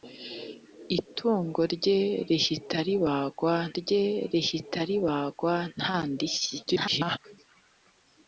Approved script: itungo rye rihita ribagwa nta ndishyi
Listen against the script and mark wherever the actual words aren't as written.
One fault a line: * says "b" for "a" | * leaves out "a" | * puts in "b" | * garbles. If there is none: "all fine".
* puts in "rye rihita ribagwa"
* garbles